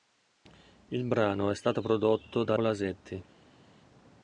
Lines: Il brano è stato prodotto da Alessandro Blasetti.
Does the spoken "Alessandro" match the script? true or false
false